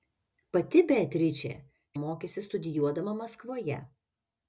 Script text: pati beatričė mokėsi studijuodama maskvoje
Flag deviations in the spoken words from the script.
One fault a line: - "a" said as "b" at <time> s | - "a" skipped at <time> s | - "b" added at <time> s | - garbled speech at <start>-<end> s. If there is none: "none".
none